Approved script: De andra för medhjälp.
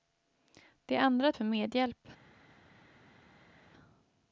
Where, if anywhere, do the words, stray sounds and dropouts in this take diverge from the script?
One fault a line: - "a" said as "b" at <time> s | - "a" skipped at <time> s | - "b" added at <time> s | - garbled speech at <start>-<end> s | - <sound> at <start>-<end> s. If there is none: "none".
none